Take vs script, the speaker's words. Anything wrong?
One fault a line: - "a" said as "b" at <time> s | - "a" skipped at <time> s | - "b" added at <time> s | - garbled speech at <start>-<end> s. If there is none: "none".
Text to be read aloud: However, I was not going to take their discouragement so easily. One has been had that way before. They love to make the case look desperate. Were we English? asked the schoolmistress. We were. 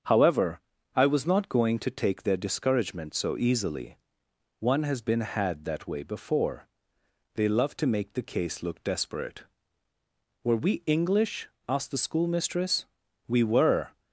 none